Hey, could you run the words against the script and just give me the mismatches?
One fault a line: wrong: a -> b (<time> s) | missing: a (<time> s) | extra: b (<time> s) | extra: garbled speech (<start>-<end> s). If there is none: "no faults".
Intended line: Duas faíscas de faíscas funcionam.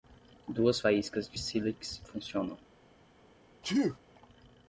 wrong: faíscas -> sílex (1.4 s)